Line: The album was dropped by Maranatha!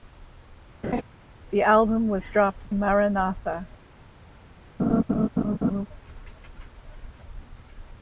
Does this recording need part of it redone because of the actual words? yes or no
yes